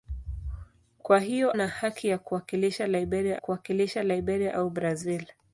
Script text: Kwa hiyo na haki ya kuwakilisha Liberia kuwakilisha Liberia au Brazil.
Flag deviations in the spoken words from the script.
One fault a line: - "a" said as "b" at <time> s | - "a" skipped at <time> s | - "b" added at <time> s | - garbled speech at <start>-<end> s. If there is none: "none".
none